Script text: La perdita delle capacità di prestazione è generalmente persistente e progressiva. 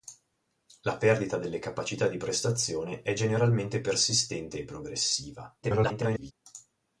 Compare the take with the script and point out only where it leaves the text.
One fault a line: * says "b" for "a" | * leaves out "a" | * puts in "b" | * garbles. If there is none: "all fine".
* garbles